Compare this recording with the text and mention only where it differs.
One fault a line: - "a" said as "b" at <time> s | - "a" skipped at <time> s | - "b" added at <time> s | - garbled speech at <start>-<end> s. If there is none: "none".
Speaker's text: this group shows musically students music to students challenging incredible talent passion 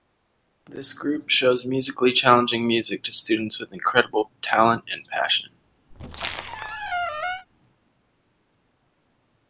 - "students" said as "challenging" at 2.1 s
- "challenging" said as "with" at 3.6 s
- "and" added at 4.9 s